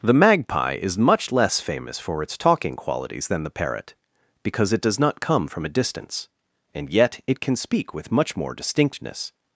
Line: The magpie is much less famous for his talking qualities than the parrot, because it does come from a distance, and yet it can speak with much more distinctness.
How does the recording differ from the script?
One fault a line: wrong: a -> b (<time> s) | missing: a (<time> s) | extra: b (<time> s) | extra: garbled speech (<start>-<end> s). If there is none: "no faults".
wrong: his -> its (2.2 s)
extra: not (5.0 s)